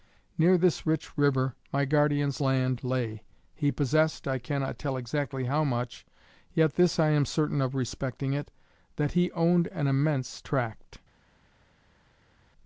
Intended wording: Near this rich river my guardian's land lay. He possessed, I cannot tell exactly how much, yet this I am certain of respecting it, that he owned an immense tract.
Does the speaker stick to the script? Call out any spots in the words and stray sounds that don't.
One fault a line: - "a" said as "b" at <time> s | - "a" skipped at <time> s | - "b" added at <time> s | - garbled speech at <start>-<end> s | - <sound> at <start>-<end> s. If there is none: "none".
none